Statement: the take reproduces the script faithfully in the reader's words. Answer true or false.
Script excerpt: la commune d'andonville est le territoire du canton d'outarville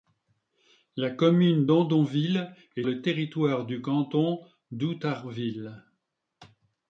true